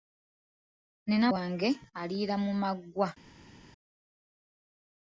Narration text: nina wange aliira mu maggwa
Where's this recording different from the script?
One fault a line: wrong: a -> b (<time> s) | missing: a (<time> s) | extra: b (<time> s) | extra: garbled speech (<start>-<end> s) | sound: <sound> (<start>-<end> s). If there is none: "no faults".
no faults